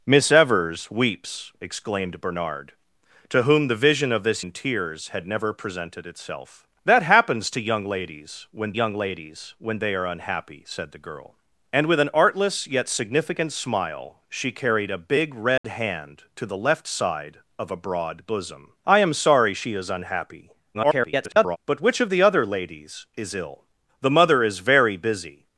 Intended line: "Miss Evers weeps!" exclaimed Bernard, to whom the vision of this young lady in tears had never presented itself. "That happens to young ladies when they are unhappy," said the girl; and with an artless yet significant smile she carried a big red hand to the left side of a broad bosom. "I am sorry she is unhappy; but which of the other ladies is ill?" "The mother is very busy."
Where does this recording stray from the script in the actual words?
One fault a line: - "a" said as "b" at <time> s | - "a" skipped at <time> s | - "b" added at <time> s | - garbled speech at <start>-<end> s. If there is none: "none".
- "young lady" skipped at 4.4 s
- "young ladies when" added at 8.7 s
- garbled speech at 20.7-21.6 s